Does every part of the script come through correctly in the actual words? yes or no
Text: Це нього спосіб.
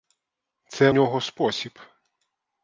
yes